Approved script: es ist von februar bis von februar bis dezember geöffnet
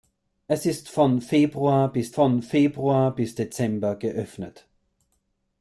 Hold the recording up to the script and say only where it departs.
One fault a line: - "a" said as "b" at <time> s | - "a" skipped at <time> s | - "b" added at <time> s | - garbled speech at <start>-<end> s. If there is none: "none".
none